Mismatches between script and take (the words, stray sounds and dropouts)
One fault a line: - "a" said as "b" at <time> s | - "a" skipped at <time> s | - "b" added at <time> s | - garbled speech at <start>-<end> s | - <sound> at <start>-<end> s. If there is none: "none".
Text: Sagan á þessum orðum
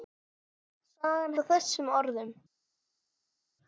none